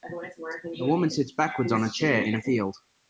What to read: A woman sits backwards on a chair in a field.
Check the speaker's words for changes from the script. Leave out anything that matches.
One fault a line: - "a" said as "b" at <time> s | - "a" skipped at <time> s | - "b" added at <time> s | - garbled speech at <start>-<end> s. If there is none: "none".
none